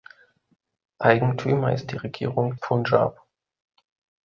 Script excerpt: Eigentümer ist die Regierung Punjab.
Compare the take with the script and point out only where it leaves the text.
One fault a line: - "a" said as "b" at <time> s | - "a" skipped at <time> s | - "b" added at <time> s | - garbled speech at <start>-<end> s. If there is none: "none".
none